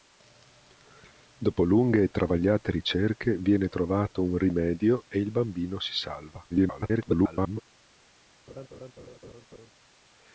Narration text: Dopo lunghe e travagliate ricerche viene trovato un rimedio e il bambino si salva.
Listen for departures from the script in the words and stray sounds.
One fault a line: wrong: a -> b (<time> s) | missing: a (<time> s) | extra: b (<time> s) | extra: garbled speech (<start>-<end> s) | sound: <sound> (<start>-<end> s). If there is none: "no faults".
extra: garbled speech (6.5-7.6 s)
sound: laugh (8.5-9.7 s)